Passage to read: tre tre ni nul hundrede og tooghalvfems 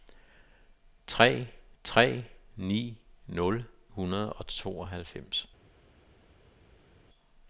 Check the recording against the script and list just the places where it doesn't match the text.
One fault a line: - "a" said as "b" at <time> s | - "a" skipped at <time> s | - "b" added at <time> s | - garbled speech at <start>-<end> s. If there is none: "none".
none